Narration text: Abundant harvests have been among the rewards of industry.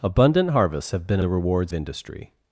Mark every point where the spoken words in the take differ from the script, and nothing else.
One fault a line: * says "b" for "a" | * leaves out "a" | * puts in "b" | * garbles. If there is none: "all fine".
* leaves out "among"
* leaves out "of"